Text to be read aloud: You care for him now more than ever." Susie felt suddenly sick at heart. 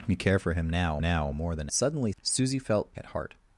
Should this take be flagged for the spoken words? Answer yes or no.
yes